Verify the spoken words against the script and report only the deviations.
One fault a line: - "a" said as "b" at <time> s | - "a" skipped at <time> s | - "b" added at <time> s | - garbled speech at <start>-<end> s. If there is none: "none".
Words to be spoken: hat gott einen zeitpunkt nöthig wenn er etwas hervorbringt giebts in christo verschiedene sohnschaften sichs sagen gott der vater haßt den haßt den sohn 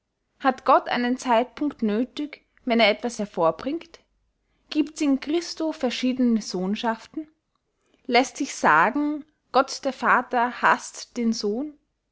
- "läßt" added at 8.1 s
- "haßt den" skipped at 11.3 s